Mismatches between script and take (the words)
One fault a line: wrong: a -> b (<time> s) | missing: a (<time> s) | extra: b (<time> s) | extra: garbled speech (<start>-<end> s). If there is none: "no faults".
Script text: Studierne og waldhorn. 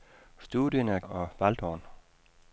no faults